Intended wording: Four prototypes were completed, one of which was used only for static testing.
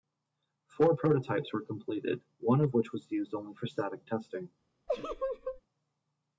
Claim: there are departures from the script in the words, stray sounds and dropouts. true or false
true